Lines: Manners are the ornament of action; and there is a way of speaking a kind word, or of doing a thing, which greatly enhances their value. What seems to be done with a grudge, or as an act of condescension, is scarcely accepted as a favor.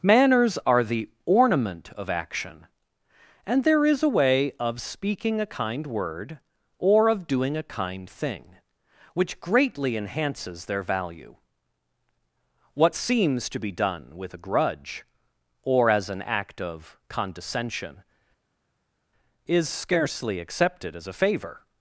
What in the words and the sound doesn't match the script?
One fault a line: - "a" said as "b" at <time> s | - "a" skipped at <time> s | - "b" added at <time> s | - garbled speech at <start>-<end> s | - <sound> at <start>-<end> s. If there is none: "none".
- "kind" added at 7.7 s